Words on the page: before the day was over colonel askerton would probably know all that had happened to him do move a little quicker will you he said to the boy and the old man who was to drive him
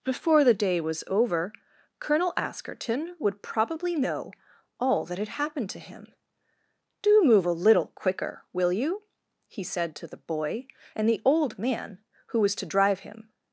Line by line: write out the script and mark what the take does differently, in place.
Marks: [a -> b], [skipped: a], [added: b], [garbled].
before the day was over colonel askerton would probably know all that had happened to him do move a little quicker will you he said to the boy and the old man who was to drive him